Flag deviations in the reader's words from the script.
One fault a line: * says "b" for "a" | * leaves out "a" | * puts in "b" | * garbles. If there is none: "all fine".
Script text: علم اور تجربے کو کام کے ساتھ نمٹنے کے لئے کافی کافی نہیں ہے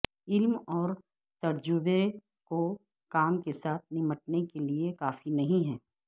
* leaves out "کافی"